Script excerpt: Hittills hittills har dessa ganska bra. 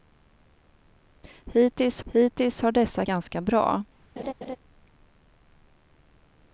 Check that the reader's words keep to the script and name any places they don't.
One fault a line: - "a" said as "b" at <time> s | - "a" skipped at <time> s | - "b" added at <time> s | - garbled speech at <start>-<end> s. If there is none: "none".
none